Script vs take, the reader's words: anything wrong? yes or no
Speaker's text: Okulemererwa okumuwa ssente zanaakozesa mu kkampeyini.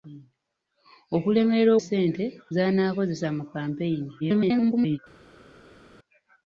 yes